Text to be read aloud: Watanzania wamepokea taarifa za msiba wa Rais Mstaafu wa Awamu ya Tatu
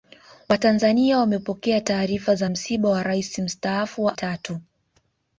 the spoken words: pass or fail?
fail